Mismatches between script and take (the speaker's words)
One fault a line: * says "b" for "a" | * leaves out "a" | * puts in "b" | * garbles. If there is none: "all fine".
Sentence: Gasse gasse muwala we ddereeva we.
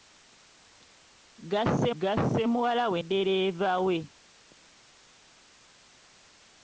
all fine